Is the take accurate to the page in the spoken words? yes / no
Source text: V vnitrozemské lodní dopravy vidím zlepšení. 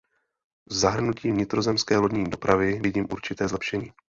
no